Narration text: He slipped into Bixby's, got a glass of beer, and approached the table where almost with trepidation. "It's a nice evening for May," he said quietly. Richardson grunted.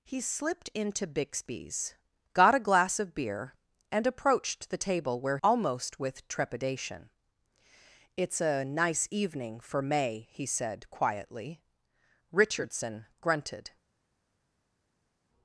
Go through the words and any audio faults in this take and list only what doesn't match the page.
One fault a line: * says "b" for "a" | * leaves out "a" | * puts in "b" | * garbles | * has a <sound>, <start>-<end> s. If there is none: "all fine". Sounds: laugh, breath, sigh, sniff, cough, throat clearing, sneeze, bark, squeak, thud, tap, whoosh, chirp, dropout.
all fine